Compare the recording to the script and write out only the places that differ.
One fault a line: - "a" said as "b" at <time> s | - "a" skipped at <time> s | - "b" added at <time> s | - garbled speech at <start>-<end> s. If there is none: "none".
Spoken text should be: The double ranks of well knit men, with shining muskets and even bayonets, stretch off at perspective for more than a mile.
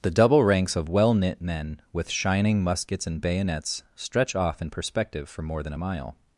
- "even" skipped at 3.2 s
- "at" said as "in" at 4.6 s